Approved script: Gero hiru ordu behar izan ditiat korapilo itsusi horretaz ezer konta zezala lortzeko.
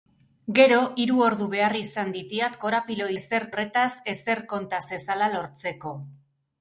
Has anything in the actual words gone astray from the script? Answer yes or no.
yes